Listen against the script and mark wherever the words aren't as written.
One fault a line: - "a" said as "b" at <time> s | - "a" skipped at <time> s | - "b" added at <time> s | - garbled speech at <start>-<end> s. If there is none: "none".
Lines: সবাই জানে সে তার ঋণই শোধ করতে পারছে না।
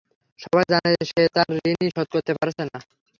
none